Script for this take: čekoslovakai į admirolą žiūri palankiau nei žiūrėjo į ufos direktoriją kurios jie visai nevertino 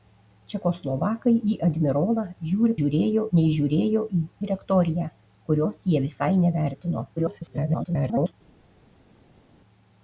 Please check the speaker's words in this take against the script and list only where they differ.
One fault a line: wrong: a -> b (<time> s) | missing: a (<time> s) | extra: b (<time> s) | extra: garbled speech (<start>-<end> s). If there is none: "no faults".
wrong: palankiau -> žiūrėjo (2.8 s)
missing: ufos (4.2 s)
extra: garbled speech (7.2-8.3 s)